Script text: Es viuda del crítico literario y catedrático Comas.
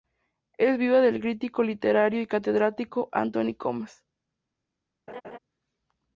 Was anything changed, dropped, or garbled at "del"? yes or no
no